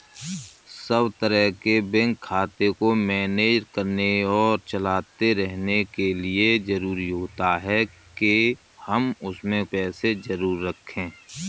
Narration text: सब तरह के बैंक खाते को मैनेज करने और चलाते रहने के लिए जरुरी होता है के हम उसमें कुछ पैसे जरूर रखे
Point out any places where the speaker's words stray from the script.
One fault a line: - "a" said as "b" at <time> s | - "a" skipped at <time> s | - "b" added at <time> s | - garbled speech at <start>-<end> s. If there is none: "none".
- "कुछ" skipped at 9.6 s